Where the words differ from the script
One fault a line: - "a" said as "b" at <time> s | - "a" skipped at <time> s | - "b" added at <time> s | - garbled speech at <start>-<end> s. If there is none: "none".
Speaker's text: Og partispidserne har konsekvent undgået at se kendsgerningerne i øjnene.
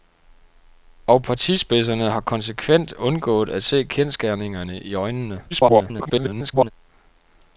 - garbled speech at 5.5-6.7 s